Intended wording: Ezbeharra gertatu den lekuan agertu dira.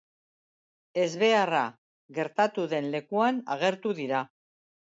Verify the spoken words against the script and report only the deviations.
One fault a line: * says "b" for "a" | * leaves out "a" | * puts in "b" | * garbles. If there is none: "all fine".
all fine